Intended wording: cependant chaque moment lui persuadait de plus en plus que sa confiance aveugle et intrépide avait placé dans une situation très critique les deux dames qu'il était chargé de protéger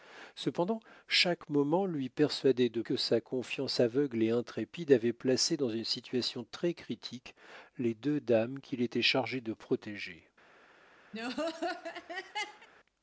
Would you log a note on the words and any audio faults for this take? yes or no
yes